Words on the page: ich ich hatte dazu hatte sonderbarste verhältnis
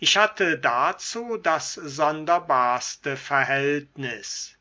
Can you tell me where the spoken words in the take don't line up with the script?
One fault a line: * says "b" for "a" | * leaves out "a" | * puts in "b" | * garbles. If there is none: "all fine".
* leaves out "ich"
* says "das" for "hatte"